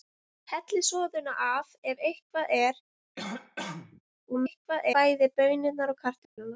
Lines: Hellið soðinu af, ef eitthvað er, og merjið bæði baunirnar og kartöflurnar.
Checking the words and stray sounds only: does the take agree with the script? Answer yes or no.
no